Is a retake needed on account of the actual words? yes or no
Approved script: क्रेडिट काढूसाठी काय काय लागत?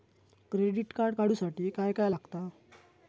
yes